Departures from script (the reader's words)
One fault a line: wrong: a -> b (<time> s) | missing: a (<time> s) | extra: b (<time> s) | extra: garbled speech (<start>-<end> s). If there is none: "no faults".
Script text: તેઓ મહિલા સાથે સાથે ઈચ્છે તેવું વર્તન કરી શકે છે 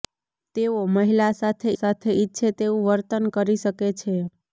no faults